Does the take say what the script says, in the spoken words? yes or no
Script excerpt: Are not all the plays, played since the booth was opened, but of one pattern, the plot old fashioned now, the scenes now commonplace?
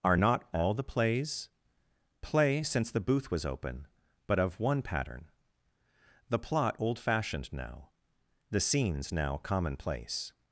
no